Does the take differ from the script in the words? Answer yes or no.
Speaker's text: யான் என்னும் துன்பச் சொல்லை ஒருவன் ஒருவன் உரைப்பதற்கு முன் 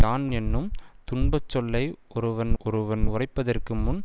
no